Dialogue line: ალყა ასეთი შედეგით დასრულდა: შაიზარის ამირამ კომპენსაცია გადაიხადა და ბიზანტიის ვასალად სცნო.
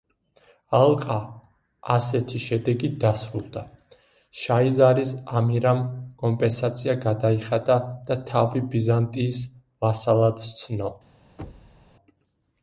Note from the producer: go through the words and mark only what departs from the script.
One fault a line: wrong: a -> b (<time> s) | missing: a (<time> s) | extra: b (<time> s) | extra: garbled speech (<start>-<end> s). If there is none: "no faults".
extra: თავი (8.3 s)